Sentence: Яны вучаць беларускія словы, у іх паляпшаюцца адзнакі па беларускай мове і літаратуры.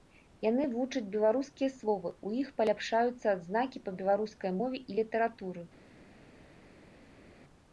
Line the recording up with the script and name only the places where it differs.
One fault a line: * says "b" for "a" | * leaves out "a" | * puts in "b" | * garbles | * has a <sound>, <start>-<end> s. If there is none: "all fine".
all fine